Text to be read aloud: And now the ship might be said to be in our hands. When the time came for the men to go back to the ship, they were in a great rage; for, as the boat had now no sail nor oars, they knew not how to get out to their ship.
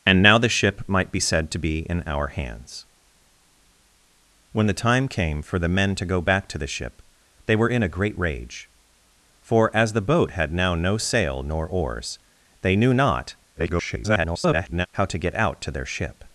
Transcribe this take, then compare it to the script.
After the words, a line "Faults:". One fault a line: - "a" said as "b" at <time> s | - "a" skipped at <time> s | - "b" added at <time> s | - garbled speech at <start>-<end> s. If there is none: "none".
And now the ship might be said to be in our hands. When the time came for the men to go back to the ship, they were in a great rage; for, as the boat had now no sail nor oars, they knew not [garbled] how to get out to their ship.
Faults:
- garbled speech at 13.6-14.9 s